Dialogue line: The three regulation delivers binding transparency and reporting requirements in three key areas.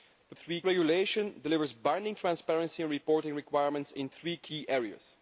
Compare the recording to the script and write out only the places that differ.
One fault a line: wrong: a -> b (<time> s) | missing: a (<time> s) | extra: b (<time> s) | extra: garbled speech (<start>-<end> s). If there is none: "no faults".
no faults